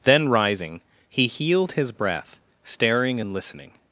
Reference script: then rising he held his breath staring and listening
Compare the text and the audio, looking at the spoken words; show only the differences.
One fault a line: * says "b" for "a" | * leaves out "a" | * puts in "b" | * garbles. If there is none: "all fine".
* says "healed" for "held"